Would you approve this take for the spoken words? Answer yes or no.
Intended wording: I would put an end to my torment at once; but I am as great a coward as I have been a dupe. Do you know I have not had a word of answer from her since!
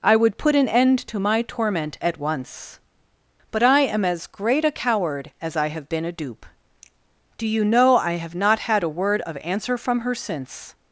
yes